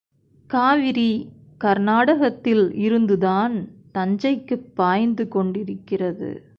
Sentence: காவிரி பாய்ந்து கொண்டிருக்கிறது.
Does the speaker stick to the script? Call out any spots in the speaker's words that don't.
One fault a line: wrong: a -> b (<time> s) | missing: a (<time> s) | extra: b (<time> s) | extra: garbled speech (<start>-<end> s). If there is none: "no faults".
extra: கர்நாடகத்தில் இருந்துதான் தஞ்சைக்குப் (1.6 s)